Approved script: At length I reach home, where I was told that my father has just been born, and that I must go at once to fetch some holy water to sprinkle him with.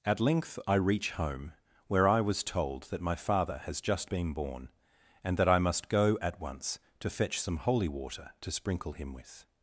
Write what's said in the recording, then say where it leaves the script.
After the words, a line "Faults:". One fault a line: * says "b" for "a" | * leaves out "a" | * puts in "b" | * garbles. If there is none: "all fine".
At length I reach home, where I was told that my father has just been born, and that I must go at once to fetch some holy water to sprinkle him with.
Faults:
all fine